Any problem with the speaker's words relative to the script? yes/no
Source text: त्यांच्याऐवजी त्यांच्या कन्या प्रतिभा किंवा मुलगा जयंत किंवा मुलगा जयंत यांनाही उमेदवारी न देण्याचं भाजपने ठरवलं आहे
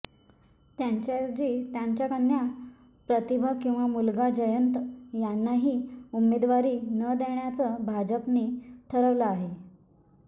yes